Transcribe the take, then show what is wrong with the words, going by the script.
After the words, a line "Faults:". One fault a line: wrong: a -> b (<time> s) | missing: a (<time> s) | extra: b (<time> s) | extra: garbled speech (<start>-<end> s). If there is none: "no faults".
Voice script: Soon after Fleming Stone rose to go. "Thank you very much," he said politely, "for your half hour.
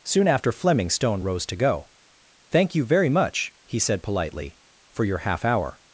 Soon after Fleming Stone rose to go. "Thank you very much," he said politely, "for your half hour.
Faults:
no faults